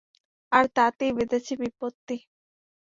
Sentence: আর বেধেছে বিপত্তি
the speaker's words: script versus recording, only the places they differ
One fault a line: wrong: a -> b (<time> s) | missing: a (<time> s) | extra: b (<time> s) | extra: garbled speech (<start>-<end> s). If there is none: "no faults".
extra: তাতেই (0.8 s)